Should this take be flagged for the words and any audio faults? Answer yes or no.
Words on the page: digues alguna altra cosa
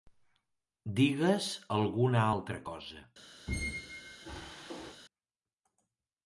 yes